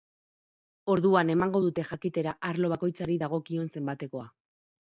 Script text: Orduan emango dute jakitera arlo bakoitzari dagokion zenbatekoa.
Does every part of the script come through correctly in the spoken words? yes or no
yes